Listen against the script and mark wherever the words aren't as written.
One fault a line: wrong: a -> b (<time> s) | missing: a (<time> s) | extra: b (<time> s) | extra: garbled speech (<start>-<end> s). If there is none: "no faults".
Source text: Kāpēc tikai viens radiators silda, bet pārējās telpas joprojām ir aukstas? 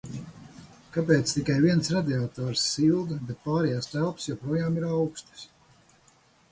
no faults